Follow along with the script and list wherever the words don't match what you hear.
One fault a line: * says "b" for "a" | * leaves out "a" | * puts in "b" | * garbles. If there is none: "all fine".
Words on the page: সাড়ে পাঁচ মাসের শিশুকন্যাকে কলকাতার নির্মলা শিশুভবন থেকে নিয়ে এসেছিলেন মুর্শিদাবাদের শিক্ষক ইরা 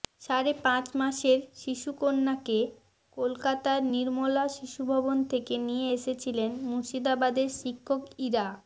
all fine